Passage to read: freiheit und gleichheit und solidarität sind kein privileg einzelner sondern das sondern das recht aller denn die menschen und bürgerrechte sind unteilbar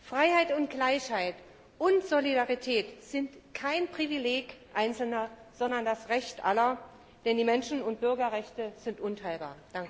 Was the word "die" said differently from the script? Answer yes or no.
no